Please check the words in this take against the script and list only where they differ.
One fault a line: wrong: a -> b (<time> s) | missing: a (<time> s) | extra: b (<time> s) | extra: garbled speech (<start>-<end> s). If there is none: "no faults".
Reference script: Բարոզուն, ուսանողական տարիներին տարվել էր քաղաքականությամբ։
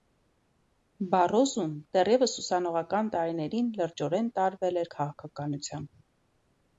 extra: դեռևս (2.0 s)
extra: լրջորեն (3.8 s)